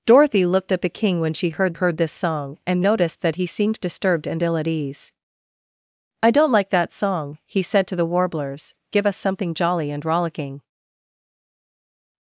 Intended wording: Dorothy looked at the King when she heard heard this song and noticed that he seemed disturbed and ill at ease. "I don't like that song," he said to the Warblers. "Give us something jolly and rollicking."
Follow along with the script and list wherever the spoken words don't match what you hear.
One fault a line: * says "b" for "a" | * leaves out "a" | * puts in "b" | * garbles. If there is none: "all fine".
all fine